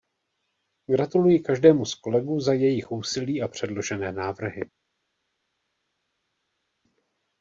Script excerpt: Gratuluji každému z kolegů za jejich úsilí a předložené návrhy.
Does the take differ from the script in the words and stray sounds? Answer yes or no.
no